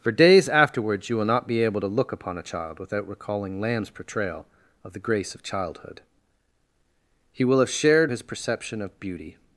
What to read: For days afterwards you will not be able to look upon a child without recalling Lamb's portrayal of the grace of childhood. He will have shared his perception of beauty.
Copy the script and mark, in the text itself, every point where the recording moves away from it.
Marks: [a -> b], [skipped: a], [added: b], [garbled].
For days afterwards you will not be able to look upon a child without recalling Lamb's portrayal of the grace of childhood. He will have shared his perception of beauty.